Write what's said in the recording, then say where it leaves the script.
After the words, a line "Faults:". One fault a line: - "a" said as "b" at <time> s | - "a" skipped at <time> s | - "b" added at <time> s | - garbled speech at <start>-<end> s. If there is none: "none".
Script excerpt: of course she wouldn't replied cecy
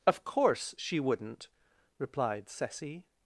of course she wouldn't replied cecy
Faults:
none